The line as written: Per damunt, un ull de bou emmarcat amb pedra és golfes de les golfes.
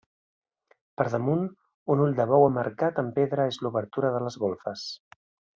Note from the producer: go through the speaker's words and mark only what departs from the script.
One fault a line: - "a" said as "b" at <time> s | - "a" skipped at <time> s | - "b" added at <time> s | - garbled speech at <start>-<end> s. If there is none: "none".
- "golfes" said as "l'obertura" at 3.7 s